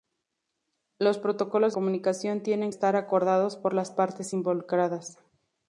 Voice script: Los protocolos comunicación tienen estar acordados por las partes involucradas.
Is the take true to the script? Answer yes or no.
yes